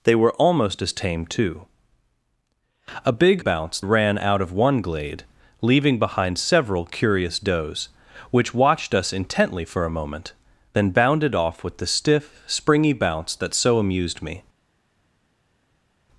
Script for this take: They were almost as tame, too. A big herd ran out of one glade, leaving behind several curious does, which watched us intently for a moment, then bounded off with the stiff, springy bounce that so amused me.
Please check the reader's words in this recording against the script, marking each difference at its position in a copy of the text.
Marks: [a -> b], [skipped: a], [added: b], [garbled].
They were almost as tame, too. A big [herd -> bounce] ran out of one glade, leaving behind several curious does, which watched us intently for a moment, then bounded off with the stiff, springy bounce that so amused me.